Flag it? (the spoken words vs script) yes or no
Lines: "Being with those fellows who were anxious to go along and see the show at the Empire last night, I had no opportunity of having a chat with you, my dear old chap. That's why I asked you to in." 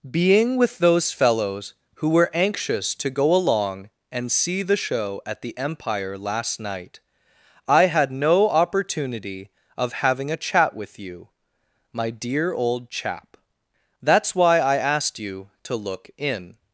yes